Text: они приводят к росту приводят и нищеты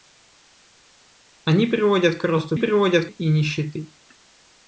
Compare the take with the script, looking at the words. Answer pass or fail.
pass